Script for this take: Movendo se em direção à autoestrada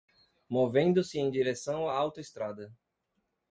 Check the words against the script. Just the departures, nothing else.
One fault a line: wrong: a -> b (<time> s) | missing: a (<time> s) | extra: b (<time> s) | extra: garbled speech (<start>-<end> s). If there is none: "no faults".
no faults